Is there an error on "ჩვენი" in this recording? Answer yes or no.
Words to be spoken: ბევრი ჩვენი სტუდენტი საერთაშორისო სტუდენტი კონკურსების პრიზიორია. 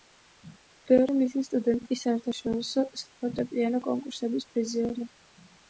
yes